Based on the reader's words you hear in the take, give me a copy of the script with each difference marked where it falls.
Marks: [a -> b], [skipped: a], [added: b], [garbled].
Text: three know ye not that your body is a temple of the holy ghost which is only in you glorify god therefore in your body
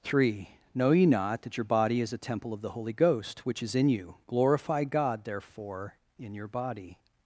three know ye not that your body is a temple of the holy ghost which is [skipped: only] in you glorify god therefore in your body